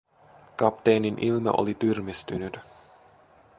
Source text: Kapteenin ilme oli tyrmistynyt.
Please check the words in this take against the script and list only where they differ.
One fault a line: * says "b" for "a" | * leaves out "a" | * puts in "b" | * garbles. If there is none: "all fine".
all fine